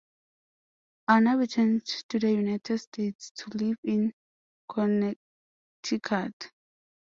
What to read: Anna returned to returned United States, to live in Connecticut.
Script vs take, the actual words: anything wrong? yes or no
yes